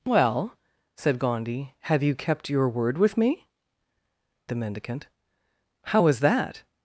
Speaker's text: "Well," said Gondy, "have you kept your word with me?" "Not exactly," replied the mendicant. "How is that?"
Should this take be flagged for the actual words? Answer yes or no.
yes